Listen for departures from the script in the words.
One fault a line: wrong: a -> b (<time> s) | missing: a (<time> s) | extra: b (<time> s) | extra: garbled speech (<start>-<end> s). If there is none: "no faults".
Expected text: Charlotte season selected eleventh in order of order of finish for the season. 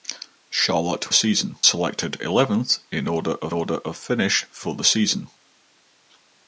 no faults